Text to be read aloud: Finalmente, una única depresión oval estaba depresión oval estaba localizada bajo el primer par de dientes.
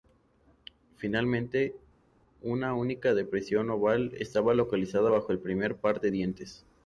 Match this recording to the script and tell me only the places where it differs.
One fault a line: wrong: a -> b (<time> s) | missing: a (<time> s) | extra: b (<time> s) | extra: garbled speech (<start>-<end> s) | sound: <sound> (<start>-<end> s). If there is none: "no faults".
missing: depresión oval estaba (4.5 s)